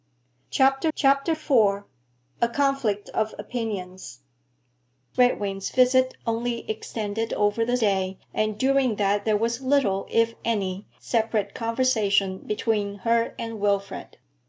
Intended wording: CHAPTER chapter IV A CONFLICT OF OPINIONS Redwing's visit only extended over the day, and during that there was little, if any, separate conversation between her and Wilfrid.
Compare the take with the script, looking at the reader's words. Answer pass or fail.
pass